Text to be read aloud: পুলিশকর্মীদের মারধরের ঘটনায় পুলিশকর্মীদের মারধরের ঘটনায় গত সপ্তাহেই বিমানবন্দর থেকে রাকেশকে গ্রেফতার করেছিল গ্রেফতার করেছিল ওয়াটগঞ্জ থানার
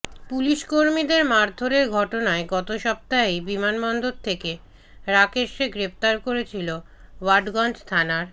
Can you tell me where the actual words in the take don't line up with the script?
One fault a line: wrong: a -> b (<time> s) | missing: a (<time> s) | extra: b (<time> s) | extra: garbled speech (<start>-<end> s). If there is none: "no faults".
missing: পুলিশকর্মীদের মারধরের ঘটনায় (2.4 s)
missing: গ্রেফতার করেছিল (6.7 s)